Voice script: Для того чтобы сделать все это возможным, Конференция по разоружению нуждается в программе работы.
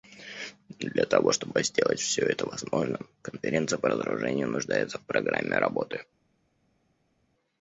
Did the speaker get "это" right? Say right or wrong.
right